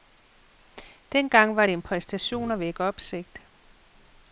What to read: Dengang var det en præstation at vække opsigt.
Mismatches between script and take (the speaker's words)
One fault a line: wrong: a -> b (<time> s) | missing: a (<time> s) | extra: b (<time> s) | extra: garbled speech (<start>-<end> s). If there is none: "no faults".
no faults